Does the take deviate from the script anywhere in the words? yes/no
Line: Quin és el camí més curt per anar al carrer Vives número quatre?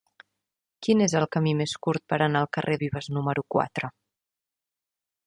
no